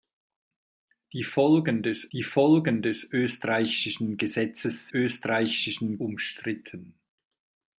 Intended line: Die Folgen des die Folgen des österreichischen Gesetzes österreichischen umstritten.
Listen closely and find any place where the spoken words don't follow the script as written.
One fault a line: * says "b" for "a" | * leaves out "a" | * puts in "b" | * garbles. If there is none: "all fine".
all fine